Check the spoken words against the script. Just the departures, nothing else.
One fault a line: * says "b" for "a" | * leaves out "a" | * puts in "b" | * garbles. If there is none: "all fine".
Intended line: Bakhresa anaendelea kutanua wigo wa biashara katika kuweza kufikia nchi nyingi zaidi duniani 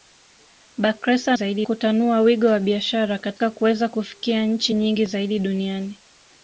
* says "zaidi" for "anaendelea"